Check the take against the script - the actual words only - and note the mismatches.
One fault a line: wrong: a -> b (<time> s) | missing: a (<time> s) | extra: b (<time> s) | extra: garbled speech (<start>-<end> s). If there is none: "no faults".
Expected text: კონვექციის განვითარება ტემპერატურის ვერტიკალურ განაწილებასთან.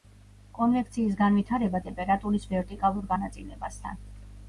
no faults